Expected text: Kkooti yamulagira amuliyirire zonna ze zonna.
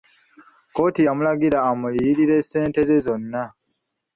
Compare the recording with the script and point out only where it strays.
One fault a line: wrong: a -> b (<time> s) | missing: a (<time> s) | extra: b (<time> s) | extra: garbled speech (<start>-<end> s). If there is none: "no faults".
wrong: zonna -> ssente (2.4 s)